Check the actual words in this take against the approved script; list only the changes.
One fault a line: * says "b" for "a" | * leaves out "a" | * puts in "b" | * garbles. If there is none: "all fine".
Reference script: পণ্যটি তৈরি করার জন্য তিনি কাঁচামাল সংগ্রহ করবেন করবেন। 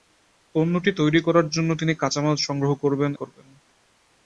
all fine